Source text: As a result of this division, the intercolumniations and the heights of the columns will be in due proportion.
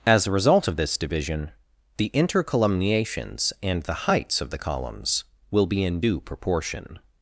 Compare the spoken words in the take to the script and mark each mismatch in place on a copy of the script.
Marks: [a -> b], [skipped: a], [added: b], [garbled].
As a result of this division, the intercolumniations and the heights of the columns will be in due proportion.